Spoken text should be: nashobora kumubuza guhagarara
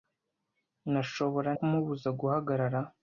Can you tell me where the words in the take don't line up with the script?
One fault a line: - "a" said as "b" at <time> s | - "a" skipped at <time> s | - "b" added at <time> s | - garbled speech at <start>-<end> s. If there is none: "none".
none